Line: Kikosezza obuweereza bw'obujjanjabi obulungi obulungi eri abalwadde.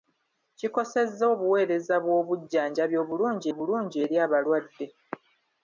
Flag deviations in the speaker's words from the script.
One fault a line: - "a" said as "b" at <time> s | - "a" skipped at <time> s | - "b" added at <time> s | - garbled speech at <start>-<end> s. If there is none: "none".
none